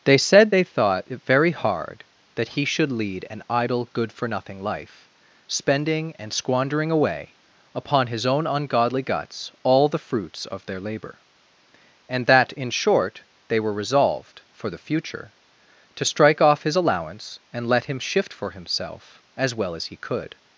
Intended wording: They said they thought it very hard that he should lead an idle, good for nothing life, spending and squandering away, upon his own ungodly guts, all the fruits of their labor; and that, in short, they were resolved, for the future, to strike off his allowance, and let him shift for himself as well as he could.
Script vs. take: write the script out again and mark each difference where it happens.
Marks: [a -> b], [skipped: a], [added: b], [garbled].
They said they thought it very hard that he should lead an idle, good for nothing life, spending and squandering away, upon his own ungodly guts, all the fruits of their labor; and that, in short, they were resolved, for the future, to strike off his allowance, and let him shift for himself as well as he could.